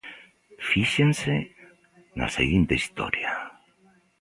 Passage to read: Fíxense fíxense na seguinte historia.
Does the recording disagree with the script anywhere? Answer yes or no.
yes